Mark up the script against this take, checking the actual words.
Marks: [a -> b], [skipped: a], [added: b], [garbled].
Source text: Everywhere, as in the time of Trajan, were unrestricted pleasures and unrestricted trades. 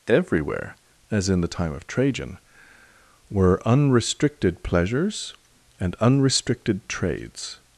Everywhere, as in the time of Trajan, were unrestricted pleasures and unrestricted trades.